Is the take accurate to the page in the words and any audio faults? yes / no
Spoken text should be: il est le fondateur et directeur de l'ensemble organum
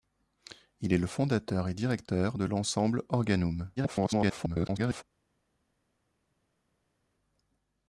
no